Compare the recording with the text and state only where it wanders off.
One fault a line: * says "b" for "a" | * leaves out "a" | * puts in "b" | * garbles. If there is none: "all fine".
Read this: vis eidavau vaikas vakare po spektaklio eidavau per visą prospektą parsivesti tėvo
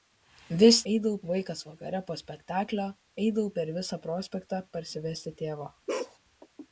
all fine